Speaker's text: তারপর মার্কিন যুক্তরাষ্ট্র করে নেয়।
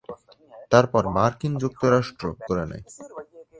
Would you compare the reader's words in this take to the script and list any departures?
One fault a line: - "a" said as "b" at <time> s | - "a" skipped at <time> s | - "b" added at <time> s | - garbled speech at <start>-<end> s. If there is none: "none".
none